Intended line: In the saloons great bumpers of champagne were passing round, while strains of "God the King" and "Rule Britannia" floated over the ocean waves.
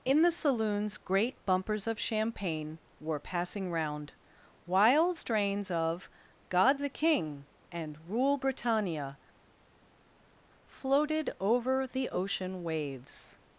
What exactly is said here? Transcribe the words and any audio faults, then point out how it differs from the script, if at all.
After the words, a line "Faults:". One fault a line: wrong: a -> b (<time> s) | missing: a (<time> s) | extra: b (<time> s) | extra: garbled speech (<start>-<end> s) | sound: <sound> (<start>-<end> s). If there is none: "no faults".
In the saloons great bumpers of champagne were passing round, while strains of "God the King" and "Rule Britannia" floated over the ocean waves.
Faults:
no faults